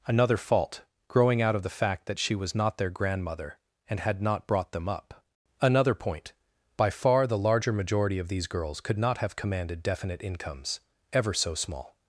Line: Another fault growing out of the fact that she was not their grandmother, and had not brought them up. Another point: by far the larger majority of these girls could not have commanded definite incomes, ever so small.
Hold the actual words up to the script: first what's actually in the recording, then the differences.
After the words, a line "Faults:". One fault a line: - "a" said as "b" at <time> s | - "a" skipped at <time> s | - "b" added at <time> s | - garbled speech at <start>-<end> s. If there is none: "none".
Another fault growing out of the fact that she was not their grandmother, and had not brought them up. Another point: by far the larger majority of these girls could not have commanded definite incomes, ever so small.
Faults:
none